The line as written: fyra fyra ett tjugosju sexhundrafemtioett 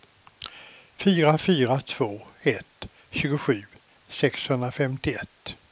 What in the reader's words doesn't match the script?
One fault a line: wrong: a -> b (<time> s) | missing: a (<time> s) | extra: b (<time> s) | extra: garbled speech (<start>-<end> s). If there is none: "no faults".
extra: två (1.8 s)